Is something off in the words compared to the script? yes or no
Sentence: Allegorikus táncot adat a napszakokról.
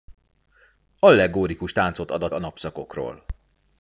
no